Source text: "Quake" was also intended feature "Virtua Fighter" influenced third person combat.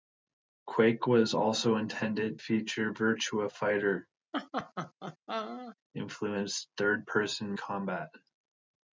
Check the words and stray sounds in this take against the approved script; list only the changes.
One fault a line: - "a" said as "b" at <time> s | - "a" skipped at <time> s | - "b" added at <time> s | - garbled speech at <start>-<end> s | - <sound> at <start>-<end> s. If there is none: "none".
- laugh at 4.3-5.8 s